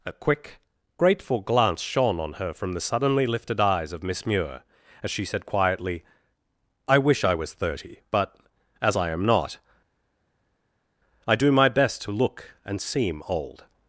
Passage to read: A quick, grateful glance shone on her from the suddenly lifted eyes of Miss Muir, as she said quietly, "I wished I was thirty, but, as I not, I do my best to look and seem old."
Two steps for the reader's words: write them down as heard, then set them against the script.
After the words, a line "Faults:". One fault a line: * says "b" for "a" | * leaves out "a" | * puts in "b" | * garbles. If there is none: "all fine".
A quick, grateful glance shone on her from the suddenly lifted eyes of Miss Muir, as she said quietly, "I wish I was thirty, but, as I am not, I do my best to look and seem old."
Faults:
* says "wish" for "wished"
* puts in "am"